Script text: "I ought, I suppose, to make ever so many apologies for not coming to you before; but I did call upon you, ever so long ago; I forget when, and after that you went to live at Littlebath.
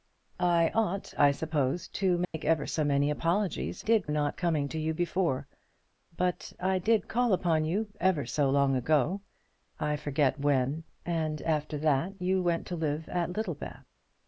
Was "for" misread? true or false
true